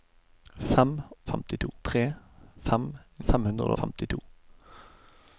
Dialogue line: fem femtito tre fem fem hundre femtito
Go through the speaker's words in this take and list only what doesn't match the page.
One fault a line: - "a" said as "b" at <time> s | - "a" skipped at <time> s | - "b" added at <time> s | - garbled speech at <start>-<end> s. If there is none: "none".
none